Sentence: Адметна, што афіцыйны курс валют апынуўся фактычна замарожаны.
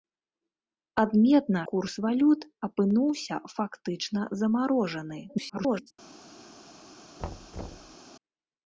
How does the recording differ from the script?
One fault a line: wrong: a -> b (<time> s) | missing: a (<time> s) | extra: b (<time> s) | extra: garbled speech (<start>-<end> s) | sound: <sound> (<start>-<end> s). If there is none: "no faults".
missing: што афіцыйны (1.6 s)
extra: garbled speech (5.3-5.9 s)
sound: thud (7.2-8.0 s)